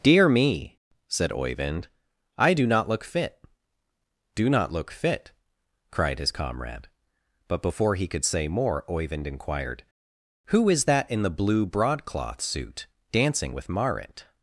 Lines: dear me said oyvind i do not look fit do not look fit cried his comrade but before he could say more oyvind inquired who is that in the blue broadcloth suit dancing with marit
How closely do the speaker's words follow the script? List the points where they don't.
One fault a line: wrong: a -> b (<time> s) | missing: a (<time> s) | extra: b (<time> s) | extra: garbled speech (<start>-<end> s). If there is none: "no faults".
no faults